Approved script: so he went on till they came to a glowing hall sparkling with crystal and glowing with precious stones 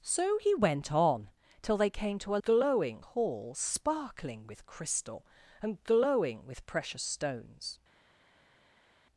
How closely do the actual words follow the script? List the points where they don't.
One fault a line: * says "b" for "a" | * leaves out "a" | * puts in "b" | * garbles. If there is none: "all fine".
all fine